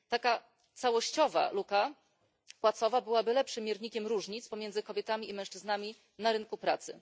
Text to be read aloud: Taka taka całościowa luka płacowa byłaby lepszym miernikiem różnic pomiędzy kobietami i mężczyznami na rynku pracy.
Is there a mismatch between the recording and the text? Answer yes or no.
yes